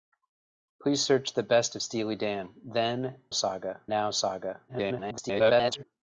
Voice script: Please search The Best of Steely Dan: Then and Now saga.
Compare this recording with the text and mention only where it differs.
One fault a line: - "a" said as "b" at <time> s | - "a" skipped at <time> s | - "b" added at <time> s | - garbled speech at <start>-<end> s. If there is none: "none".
- "and" said as "saga" at 3.3 s
- garbled speech at 4.7-5.8 s